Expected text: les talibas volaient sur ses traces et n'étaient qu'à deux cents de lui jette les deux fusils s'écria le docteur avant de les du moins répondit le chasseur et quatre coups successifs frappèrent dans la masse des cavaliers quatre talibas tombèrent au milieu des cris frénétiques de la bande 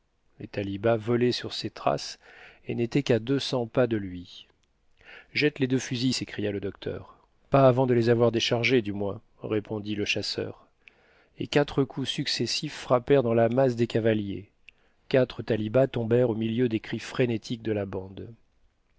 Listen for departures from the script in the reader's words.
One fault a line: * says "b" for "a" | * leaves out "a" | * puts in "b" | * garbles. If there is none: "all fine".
* puts in "pas"
* puts in "pas"
* puts in "avoir déchargés"